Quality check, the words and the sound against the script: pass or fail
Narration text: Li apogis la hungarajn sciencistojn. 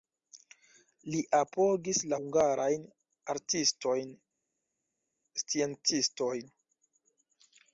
fail